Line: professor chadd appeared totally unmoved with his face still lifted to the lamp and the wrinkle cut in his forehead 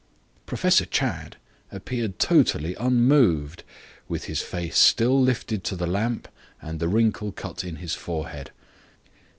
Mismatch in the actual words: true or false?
false